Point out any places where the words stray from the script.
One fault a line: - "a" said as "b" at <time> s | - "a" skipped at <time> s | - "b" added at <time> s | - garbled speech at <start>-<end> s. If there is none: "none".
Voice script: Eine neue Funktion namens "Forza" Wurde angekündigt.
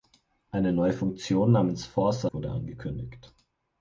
none